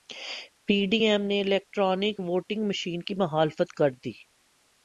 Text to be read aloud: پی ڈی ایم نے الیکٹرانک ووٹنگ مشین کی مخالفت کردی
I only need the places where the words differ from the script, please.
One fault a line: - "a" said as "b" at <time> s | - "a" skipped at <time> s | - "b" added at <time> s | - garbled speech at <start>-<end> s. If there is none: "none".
none